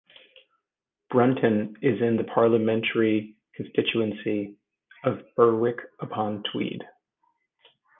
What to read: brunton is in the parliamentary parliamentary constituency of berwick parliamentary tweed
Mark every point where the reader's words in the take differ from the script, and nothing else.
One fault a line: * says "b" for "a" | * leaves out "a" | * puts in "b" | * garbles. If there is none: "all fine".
* leaves out "parliamentary"
* says "upon" for "parliamentary"